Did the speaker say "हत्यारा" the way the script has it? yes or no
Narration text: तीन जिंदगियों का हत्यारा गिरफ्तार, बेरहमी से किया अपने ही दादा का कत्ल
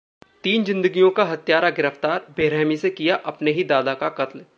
yes